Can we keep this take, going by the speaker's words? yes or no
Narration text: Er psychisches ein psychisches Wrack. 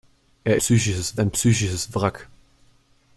yes